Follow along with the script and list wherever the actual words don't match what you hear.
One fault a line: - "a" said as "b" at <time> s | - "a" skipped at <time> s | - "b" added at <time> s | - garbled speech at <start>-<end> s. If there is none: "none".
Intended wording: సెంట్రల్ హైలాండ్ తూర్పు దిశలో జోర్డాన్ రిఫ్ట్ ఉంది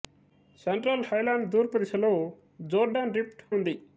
none